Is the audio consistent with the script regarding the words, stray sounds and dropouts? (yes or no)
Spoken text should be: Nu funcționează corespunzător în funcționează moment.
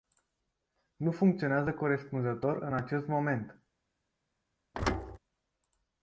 no